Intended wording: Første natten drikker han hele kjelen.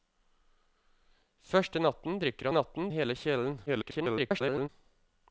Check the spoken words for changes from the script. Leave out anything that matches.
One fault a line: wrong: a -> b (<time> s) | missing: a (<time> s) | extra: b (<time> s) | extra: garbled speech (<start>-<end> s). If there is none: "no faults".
wrong: han -> natten (2.5 s)
extra: garbled speech (3.7-4.7 s)